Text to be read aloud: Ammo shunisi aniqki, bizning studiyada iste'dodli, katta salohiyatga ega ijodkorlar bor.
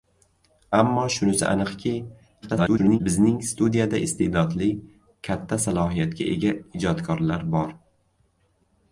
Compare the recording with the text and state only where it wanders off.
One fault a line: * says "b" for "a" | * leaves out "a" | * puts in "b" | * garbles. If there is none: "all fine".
* garbles